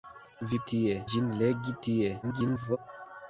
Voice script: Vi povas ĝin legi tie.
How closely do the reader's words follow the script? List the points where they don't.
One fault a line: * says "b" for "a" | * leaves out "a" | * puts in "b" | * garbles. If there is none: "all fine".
* says "tie" for "povas"
* garbles